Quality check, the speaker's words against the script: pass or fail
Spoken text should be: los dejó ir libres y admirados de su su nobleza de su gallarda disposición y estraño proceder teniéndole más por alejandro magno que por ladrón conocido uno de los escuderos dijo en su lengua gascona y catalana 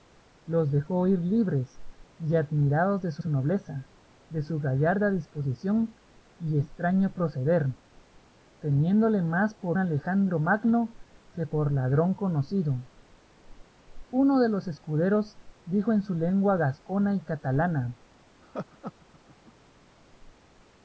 pass